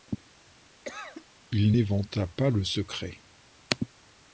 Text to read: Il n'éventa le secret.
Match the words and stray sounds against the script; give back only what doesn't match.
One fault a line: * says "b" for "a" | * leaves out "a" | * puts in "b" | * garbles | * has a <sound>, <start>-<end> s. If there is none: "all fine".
* has a cough, 0.8-1.2 s
* puts in "pas"